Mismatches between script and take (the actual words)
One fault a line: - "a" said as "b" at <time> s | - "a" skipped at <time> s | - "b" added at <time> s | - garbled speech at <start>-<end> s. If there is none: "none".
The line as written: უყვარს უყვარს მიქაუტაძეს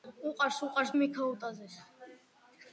none